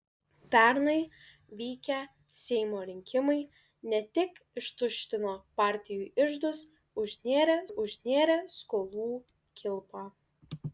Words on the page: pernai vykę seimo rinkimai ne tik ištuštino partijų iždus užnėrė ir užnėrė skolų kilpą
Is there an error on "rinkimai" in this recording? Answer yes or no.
no